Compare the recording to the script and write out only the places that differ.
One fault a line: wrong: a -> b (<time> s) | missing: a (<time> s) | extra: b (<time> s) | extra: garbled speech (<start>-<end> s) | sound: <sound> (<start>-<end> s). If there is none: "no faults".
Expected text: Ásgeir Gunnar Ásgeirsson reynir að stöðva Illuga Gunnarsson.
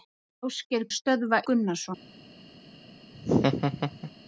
missing: Gunnar Ásgeirsson reynir (0.9 s)
missing: Illuga (1.4 s)
sound: laugh (3.1-4.1 s)